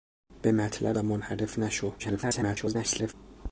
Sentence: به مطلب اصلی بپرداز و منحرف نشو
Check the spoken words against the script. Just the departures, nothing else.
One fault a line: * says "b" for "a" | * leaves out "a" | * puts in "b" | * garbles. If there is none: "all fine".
* leaves out "اصلی بپرداز"
* garbles